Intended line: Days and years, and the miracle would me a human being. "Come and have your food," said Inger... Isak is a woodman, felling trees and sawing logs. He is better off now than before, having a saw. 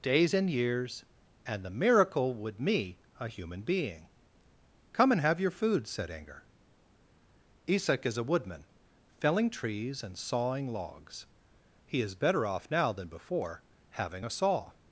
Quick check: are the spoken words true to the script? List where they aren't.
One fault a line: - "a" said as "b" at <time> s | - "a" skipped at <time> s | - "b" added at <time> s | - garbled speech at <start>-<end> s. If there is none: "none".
none